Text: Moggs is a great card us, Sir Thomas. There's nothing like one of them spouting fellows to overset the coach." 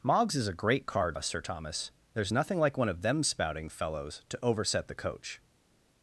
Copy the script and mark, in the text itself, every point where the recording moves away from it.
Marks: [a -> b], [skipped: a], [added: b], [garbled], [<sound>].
Moggs is a great card us, Sir Thomas. There's nothing like one of them spouting fellows to overset the coach."